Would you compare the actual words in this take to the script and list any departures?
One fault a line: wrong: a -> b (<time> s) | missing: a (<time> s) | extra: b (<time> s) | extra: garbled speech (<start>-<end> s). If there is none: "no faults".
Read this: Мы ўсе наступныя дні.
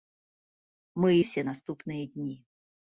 no faults